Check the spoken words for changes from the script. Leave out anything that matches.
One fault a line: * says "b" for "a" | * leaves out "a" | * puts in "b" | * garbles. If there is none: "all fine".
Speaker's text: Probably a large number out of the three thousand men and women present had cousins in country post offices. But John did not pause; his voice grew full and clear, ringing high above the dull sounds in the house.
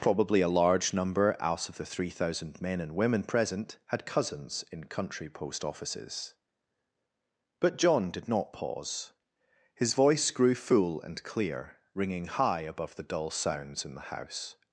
all fine